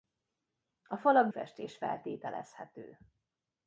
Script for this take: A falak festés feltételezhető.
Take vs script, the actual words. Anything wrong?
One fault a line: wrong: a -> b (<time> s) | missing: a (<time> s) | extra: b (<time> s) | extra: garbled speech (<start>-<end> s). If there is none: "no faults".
no faults